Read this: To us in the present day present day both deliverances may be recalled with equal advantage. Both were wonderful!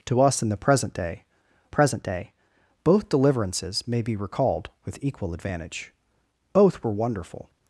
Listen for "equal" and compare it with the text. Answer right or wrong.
right